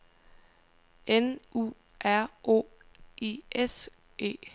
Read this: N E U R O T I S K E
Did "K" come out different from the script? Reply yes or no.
yes